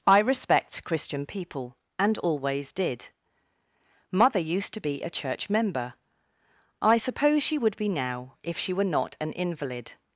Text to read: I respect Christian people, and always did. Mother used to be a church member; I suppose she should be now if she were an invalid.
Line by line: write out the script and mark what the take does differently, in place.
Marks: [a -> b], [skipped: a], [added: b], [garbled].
I respect Christian people, and always did. Mother used to be a church member; I suppose she [should -> would] be now if she were [added: not] an invalid.